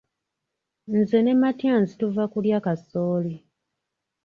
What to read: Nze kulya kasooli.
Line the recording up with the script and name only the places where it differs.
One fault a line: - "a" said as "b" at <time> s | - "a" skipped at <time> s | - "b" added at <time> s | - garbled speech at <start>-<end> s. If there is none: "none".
- "ne Matyansi tuva" added at 1.2 s